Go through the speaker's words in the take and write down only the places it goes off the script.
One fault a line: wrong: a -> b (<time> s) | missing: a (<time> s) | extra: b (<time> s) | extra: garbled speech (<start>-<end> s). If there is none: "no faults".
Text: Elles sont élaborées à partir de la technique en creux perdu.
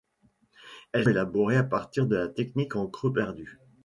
missing: sont (1.1 s)